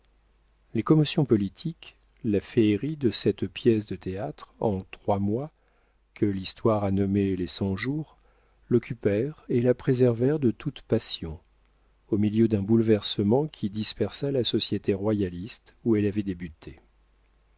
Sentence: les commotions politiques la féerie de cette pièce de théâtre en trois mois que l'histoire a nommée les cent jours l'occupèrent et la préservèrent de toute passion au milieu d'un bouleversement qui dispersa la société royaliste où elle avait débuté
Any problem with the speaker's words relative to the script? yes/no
no